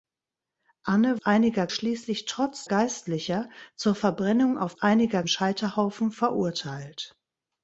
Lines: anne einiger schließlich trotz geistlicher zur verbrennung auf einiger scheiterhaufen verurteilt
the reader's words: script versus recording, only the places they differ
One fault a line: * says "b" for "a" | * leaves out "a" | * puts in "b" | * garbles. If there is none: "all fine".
all fine